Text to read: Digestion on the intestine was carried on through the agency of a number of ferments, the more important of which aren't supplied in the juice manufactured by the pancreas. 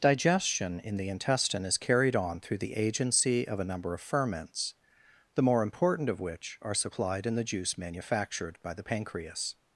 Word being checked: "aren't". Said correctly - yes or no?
no